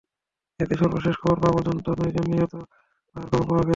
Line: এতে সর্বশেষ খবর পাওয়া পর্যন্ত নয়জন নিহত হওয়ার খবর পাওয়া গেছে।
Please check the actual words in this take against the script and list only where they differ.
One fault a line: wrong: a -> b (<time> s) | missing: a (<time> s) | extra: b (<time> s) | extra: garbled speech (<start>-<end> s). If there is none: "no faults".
no faults